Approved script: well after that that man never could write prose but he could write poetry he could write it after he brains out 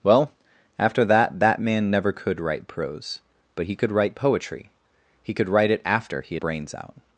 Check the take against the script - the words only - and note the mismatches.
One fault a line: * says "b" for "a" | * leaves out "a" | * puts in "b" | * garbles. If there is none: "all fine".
all fine